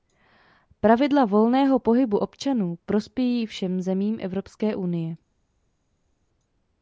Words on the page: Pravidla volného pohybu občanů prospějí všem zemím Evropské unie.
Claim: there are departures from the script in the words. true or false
false